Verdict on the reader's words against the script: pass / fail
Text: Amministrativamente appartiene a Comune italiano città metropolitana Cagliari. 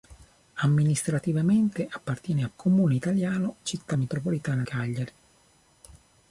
pass